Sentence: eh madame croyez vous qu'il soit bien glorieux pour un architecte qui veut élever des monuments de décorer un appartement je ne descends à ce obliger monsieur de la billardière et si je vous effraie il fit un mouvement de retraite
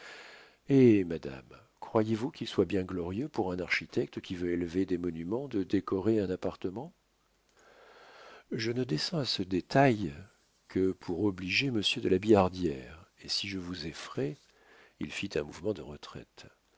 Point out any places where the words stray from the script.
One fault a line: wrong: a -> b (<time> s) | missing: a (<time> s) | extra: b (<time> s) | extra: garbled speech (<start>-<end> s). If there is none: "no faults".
extra: détail que pour (9.4 s)